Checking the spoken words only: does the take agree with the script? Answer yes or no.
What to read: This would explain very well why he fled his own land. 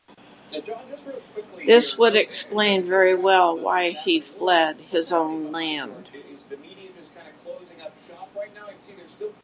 yes